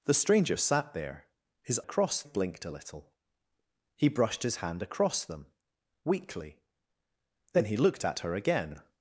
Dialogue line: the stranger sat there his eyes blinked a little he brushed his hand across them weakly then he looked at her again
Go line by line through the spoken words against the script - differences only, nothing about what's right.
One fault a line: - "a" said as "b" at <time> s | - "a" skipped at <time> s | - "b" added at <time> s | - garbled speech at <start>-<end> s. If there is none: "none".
- "eyes" said as "across" at 1.8 s